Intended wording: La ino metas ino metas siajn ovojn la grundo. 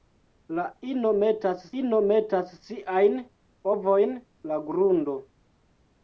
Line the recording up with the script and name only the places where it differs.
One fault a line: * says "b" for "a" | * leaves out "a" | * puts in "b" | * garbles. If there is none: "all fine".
all fine